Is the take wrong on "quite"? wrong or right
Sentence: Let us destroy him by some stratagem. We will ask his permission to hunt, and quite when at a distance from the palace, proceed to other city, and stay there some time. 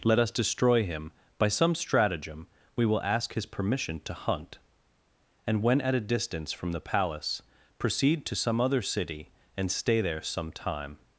wrong